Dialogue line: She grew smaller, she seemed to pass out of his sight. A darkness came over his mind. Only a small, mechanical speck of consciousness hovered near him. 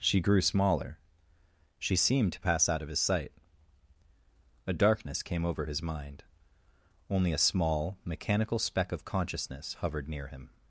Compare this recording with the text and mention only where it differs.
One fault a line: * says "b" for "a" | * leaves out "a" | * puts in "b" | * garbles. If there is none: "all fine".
all fine